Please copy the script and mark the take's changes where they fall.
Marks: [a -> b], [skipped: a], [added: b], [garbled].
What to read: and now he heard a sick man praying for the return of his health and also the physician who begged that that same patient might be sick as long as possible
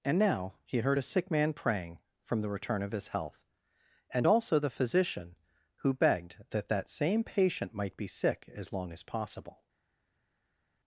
and now he heard a sick man praying [for -> from] the return of his health and also the physician who begged that that same patient might be sick as long as possible